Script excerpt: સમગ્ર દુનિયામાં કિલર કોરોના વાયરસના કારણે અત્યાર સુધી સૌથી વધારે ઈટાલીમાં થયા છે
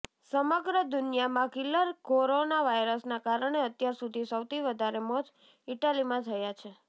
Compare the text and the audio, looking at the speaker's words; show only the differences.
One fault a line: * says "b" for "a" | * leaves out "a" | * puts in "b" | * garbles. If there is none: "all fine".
* puts in "મોત"